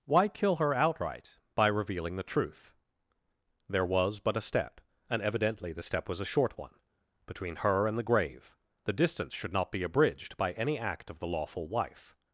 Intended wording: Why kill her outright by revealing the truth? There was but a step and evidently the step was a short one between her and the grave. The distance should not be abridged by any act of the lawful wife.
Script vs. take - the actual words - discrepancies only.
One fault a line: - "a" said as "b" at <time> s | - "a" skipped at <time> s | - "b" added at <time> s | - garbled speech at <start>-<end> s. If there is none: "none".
none